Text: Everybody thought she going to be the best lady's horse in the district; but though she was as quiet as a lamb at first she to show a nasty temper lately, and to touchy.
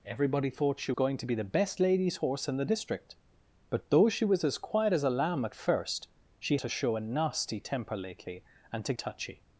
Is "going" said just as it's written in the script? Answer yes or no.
yes